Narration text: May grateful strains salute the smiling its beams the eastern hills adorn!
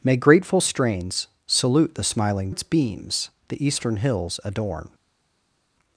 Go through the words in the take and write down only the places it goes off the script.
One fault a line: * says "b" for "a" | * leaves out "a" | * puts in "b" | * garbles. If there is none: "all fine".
all fine